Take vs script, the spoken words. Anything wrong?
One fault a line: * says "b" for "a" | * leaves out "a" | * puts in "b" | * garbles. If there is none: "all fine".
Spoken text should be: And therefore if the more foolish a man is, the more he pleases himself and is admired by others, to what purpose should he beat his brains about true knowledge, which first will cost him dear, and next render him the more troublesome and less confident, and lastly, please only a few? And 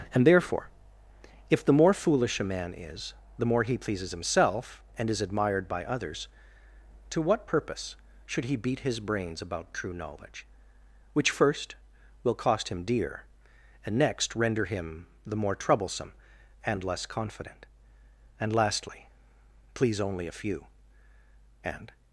all fine